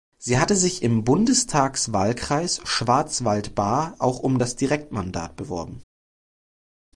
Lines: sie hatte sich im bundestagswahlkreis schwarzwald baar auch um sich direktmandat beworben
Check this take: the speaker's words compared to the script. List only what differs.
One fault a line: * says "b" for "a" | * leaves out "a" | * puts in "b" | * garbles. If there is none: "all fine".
* says "das" for "sich"